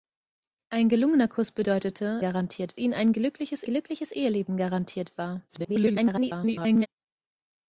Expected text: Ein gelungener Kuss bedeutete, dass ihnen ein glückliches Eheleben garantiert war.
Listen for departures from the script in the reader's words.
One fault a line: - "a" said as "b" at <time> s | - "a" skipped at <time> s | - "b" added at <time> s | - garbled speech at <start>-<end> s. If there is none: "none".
- "dass" said as "garantiert" at 2.2 s
- "glückliches" added at 3.6 s
- garbled speech at 5.5-6.9 s